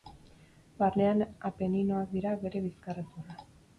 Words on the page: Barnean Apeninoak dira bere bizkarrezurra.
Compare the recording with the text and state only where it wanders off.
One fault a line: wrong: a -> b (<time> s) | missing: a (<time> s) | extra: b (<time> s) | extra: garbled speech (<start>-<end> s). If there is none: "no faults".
no faults